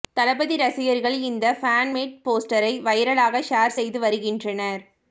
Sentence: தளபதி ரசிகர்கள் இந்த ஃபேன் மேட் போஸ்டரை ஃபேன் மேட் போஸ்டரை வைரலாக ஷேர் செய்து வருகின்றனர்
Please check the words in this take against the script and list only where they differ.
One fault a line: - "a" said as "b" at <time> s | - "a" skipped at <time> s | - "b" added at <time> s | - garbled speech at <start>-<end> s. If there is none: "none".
- "ஃபேன் மேட் போஸ்டரை" skipped at 2.7 s